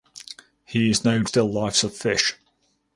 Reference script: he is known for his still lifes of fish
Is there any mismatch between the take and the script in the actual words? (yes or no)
yes